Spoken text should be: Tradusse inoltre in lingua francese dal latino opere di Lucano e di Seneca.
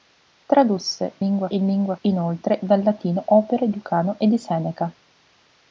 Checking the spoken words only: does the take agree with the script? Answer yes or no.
no